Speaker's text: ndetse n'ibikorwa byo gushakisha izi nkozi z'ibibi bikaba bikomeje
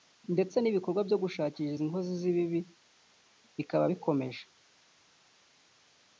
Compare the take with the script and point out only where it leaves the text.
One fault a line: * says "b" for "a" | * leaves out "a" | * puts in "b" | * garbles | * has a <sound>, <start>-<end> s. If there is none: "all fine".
all fine